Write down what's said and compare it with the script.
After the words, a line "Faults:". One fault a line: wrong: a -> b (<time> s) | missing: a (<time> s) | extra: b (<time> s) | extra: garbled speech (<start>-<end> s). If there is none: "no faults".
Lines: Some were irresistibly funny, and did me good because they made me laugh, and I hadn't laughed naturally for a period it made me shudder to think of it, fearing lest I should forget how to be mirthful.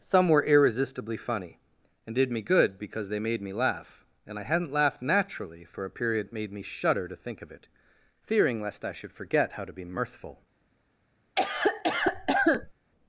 Some were irresistibly funny, and did me good because they made me laugh, and I hadn't laughed naturally for a period it made me shudder to think of it, fearing lest I should forget how to be mirthful.
Faults:
no faults